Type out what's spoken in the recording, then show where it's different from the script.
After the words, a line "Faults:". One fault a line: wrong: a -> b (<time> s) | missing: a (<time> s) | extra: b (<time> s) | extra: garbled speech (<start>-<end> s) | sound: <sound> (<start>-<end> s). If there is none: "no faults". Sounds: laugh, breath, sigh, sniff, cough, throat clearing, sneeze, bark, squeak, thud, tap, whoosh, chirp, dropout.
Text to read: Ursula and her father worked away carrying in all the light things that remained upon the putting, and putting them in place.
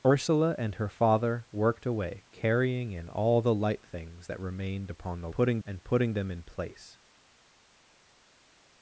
Ursula and her father worked away carrying in all the light things that remained upon the putting, and putting them in place.
Faults:
no faults